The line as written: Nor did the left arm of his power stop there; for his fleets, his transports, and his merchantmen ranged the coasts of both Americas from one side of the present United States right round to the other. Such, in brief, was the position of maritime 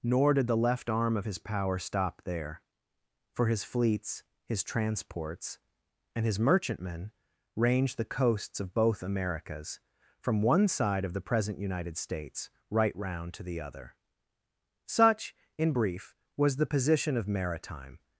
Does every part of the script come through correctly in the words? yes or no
yes